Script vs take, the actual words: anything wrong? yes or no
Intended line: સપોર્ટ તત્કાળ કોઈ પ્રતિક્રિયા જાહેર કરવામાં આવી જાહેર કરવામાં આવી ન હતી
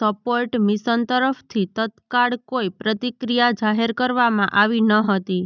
yes